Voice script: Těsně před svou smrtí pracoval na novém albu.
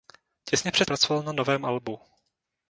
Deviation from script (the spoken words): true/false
true